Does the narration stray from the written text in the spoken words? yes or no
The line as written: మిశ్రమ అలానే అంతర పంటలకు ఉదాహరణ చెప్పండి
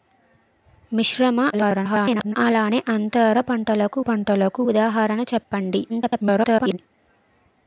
yes